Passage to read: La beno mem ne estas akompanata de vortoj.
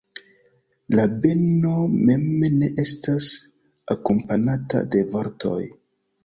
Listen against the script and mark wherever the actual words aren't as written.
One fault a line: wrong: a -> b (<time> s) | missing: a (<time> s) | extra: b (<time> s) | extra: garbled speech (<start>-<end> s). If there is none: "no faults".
no faults